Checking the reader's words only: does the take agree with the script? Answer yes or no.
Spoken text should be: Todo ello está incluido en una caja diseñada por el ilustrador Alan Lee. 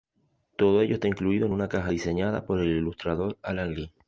yes